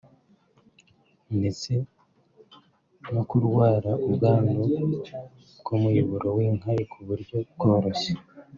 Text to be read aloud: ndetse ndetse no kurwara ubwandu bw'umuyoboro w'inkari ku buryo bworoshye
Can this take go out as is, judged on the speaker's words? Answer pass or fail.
fail